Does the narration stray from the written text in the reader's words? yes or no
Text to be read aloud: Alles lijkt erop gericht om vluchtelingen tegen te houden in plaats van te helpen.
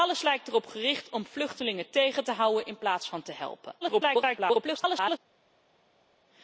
yes